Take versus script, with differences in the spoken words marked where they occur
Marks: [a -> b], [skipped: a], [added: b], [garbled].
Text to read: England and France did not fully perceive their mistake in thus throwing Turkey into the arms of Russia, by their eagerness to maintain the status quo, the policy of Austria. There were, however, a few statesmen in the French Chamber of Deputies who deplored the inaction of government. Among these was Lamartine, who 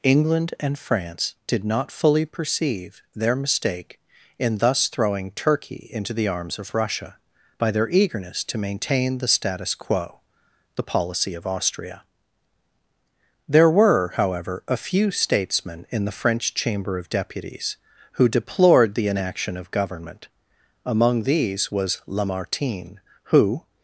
England and France did not fully perceive their mistake in thus throwing Turkey into the arms of Russia, by their eagerness to maintain the status quo, the policy of Austria. There were, however, a few statesmen in the French Chamber of Deputies who deplored the inaction of government. Among these was Lamartine, who